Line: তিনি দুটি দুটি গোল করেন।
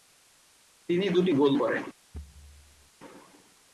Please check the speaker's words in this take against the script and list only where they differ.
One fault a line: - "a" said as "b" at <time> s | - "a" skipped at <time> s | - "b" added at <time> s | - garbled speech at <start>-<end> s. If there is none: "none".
- "দুটি" skipped at 1.3 s